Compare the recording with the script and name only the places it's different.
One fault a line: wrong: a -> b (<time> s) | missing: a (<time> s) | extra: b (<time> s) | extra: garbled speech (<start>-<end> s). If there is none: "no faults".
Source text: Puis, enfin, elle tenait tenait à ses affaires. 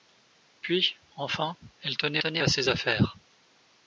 no faults